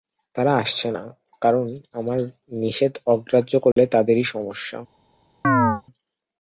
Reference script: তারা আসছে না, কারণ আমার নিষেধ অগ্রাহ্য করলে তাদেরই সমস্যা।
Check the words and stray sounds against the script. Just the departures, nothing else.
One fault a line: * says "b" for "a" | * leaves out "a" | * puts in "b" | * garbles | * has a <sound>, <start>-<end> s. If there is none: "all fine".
* has a dropout, 3.7-3.8 s
* has a chirp, 5.4-5.8 s